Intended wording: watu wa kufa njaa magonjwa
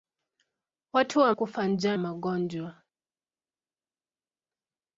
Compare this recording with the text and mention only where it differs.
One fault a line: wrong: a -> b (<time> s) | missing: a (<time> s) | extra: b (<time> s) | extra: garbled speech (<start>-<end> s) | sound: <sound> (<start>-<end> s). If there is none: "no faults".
no faults